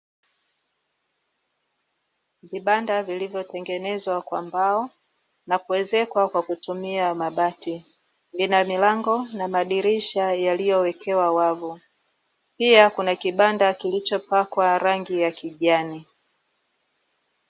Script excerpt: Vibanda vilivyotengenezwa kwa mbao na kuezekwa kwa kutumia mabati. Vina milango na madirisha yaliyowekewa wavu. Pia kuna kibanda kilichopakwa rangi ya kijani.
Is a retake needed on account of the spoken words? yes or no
no